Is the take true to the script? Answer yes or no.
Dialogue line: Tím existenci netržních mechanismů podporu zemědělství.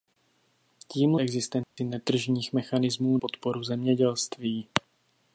yes